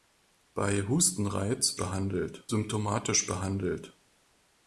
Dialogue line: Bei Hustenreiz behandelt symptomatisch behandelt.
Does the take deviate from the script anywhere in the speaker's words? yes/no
no